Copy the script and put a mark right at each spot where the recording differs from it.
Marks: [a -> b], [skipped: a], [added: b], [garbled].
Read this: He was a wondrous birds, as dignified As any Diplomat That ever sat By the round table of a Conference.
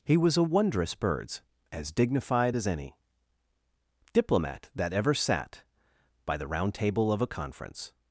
He was a wondrous birds, as dignified As any Diplomat That ever sat By the round table of a Conference.